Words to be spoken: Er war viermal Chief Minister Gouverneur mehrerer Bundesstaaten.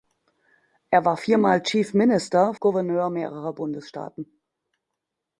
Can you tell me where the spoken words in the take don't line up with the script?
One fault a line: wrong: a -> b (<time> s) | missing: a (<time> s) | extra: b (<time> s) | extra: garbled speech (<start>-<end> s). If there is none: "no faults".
no faults